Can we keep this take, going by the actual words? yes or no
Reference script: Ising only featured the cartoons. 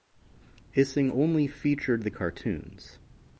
yes